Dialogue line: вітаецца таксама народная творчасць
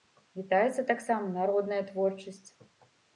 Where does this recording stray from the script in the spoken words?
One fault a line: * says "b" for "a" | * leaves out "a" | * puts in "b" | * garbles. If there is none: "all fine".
all fine